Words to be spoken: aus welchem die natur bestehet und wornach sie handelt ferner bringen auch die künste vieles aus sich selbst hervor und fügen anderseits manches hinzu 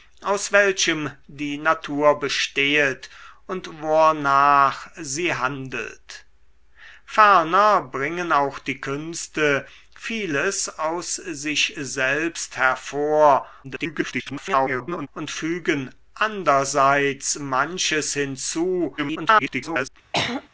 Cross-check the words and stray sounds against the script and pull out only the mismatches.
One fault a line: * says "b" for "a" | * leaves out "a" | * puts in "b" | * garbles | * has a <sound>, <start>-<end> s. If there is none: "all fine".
* garbles
* garbles
* has a throat clearing, 20.1-20.5 s